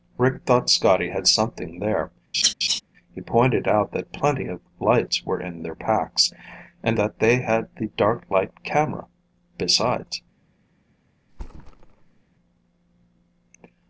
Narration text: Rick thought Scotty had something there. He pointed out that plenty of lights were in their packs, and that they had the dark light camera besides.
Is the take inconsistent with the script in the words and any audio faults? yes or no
yes